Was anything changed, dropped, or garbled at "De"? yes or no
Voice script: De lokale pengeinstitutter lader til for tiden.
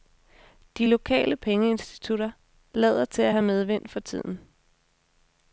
no